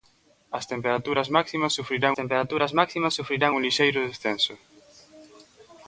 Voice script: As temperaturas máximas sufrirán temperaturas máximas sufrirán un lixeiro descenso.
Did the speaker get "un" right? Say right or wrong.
right